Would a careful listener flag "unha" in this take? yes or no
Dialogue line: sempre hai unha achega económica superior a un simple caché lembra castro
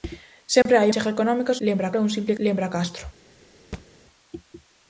yes